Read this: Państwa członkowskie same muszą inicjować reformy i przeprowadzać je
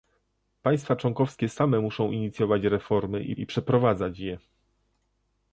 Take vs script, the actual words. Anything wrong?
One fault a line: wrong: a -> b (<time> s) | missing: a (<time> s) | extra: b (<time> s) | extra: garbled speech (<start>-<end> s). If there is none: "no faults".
extra: i (3.3 s)